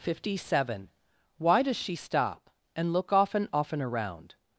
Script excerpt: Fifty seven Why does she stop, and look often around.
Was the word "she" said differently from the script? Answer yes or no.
no